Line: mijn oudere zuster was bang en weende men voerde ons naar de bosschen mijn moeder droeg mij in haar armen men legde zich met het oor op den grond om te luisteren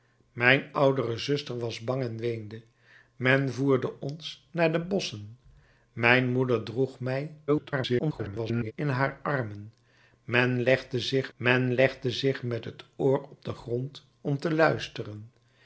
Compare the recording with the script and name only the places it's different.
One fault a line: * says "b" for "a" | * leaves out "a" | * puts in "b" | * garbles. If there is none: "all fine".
* garbles
* puts in "men legde zich"